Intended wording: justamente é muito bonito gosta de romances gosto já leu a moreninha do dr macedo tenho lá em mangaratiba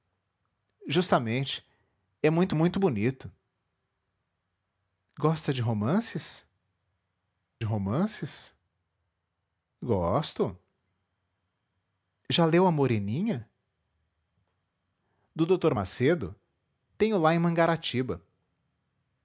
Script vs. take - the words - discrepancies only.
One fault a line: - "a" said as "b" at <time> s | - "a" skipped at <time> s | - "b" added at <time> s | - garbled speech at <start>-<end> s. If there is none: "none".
- "muito" added at 2.5 s
- "romances" added at 7.6 s